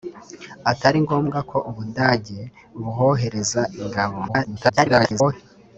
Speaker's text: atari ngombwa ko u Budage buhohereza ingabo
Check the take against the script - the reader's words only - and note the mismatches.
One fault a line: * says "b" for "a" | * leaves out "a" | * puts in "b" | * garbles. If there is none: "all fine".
* garbles